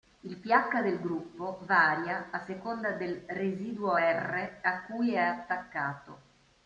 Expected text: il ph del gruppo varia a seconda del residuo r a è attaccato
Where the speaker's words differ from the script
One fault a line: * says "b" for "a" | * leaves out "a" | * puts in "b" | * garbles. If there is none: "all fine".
* puts in "cui"